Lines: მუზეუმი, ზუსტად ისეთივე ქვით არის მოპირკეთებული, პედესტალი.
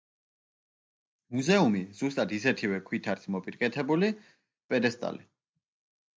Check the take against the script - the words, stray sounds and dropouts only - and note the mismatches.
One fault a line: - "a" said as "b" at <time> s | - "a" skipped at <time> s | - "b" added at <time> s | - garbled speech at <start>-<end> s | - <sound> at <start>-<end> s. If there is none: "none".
none